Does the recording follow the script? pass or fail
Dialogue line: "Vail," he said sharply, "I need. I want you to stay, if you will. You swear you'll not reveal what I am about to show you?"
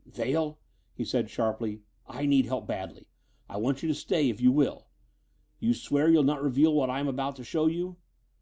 fail